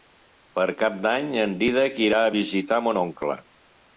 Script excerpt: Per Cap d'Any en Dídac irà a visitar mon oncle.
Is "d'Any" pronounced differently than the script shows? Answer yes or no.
no